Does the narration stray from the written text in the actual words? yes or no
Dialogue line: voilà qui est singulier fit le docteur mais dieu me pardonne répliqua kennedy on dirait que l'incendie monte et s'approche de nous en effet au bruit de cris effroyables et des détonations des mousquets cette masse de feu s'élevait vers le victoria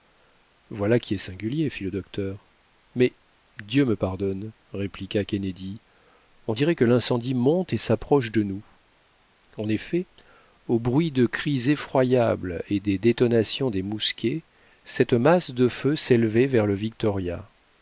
no